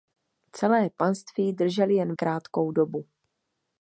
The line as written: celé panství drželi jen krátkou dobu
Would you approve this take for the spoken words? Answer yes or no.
yes